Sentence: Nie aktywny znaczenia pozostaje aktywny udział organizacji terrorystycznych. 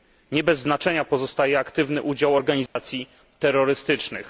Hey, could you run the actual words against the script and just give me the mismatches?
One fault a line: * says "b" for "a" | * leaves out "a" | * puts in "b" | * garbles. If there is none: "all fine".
* says "bez" for "aktywny"